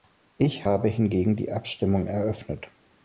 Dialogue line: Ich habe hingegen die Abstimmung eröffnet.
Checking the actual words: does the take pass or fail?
pass